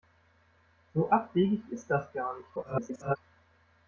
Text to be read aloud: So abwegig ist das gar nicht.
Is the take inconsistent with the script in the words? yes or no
yes